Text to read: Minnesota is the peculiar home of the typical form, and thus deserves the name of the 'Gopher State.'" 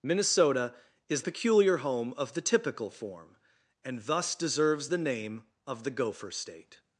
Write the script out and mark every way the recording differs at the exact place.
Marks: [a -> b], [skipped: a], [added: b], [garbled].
Minnesota is [skipped: the] peculiar home of the typical form, and thus deserves the name of the 'Gopher State.'"